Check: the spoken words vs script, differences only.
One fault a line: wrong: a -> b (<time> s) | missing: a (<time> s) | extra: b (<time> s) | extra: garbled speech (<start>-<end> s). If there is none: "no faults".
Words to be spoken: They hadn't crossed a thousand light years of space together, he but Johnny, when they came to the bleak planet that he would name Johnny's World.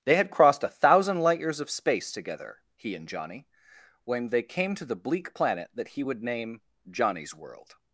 wrong: hadn't -> had (0.1 s)
wrong: but -> and (3.0 s)